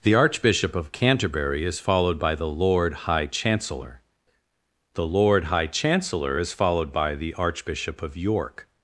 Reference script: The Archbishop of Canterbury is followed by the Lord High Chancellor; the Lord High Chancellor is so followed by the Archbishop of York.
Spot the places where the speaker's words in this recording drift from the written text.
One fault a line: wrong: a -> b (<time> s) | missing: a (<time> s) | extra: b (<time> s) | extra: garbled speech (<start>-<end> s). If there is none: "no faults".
missing: so (6.5 s)